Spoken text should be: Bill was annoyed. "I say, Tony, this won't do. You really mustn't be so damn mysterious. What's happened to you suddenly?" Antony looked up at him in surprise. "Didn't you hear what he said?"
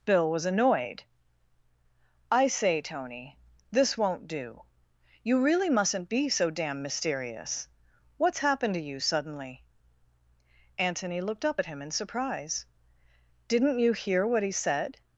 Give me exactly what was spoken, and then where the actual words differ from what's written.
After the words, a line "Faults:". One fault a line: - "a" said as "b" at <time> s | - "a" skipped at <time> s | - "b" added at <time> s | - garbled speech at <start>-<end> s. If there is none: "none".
Bill was annoyed. "I say, Tony, this won't do. You really mustn't be so damn mysterious. What's happened to you suddenly?" Antony looked up at him in surprise. "Didn't you hear what he said?"
Faults:
none